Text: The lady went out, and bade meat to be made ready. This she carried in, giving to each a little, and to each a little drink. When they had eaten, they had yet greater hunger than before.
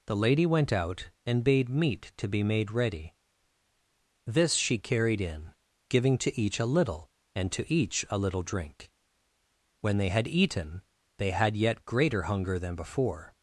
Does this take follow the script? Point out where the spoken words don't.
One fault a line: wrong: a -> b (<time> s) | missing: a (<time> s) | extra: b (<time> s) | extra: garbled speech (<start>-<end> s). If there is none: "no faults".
no faults